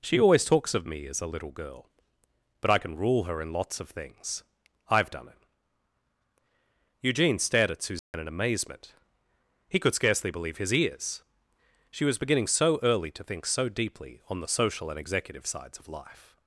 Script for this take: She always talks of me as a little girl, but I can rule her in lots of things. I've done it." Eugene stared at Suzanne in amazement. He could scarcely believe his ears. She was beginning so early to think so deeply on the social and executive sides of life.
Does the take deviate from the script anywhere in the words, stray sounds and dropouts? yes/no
yes